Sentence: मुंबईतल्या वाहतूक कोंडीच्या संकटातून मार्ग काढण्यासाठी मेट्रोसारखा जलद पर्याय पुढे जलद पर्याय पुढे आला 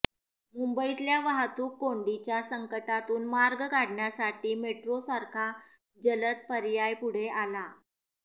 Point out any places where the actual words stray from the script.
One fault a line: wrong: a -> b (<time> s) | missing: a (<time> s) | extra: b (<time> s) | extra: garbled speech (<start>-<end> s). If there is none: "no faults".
missing: जलद पर्याय पुढे (7.3 s)